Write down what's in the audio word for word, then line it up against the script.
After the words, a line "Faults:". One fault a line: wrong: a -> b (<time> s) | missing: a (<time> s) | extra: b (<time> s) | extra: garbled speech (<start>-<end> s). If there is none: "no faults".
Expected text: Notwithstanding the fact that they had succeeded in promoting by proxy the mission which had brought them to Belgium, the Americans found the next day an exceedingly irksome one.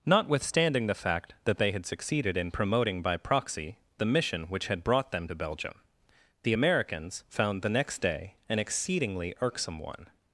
Notwithstanding the fact that they had succeeded in promoting by proxy the mission which had brought them to Belgium, the Americans found the next day an exceedingly irksome one.
Faults:
no faults